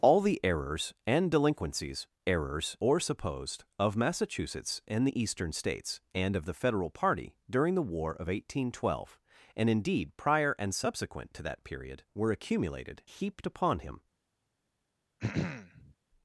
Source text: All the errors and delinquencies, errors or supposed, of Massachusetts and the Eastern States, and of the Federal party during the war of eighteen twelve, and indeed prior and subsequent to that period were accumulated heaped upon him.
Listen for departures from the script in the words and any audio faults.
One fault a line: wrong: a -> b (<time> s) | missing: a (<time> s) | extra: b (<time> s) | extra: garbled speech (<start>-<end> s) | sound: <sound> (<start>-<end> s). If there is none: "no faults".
sound: throat clearing (15.2-15.9 s)